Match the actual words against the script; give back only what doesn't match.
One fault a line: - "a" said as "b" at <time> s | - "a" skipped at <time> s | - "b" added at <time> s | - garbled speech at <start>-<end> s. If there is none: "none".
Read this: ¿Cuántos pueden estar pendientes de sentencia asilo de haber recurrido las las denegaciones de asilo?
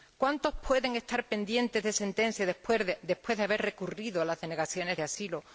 - "asilo" said as "después" at 2.5 s
- "las" skipped at 4.4 s